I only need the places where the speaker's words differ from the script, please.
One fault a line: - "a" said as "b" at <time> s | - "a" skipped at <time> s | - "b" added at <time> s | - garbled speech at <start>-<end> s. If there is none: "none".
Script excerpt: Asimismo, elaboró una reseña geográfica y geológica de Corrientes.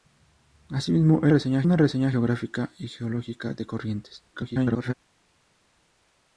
- "elaboró" said as "reseña" at 1.3 s
- garbled speech at 4.3-4.9 s